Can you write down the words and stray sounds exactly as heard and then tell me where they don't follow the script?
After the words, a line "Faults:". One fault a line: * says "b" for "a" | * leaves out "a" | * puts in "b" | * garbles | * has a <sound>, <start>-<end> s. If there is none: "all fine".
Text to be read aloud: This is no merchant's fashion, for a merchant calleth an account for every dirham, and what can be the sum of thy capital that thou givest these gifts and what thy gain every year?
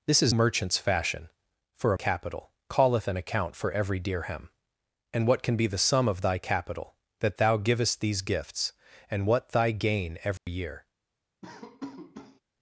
This is merchant's fashion, for a capital calleth an account for every dirham, and what can be the sum of thy capital that thou givest these gifts and what thy gain every year?
Faults:
* leaves out "no"
* says "capital" for "merchant"
* has a dropout, 10.4-10.5 s
* has a laugh, 11.4-12.4 s